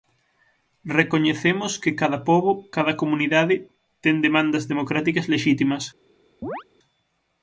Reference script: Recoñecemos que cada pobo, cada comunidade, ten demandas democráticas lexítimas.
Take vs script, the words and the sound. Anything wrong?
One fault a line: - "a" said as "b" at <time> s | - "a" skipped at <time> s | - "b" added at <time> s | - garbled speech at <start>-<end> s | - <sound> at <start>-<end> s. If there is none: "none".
- chirp at 6.4-6.6 s